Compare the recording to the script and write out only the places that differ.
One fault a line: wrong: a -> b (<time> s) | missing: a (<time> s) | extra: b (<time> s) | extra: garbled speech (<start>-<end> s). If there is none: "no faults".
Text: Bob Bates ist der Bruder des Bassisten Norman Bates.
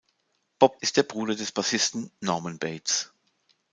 missing: Bates (0.8 s)